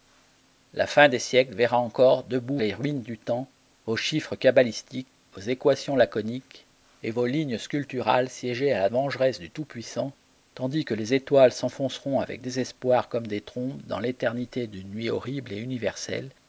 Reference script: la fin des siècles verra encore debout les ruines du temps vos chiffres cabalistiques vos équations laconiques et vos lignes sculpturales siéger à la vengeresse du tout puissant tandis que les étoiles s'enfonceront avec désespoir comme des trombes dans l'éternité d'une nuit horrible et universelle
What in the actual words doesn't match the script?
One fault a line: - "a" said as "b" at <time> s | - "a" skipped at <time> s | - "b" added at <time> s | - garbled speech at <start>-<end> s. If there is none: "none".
none